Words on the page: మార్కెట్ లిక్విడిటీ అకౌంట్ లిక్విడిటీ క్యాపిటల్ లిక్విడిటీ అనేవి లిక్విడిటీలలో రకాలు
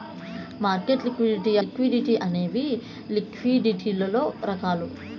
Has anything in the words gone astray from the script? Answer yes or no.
yes